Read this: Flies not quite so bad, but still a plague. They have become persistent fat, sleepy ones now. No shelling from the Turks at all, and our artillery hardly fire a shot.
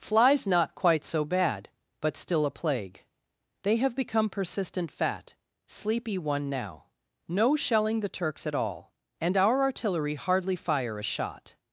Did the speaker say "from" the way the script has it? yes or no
no